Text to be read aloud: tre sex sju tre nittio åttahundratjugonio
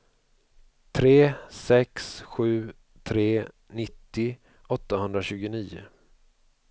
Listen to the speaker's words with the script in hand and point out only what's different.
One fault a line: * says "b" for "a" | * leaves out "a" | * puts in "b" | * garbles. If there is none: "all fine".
all fine